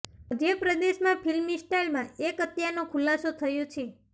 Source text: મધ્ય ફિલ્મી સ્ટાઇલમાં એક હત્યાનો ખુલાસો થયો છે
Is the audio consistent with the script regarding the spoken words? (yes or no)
no